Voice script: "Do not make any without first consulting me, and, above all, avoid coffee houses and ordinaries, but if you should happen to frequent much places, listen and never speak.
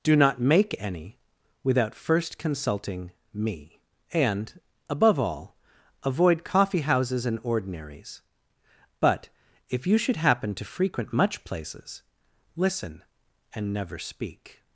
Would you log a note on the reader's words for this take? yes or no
no